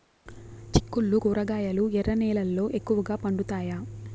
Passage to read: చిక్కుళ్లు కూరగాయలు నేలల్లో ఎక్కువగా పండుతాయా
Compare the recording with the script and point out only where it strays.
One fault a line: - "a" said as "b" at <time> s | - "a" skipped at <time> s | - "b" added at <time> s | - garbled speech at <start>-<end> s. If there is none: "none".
- "ఎర్ర" added at 1.9 s